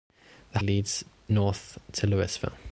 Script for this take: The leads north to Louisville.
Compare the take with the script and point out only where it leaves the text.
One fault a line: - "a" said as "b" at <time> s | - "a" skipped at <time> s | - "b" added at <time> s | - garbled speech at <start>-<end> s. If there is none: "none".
none